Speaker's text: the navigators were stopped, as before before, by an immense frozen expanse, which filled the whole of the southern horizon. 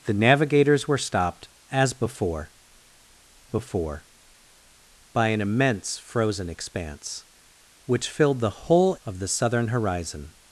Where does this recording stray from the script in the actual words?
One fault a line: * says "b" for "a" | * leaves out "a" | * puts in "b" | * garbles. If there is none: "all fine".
all fine